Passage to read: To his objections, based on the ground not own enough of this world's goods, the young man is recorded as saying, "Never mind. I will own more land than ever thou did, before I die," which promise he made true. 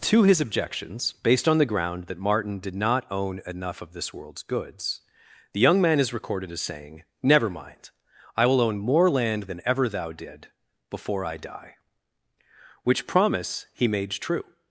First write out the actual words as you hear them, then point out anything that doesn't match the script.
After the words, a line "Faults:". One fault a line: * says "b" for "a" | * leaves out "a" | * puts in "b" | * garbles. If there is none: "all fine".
To his objections, based on the ground that Martin did not own enough of this world's goods, the young man is recorded as saying, "Never mind. I will own more land than ever thou did, before I die," which promise he made true.
Faults:
* puts in "that Martin did"